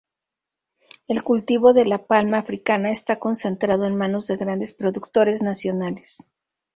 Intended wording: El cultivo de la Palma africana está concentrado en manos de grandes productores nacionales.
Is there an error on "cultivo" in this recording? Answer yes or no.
no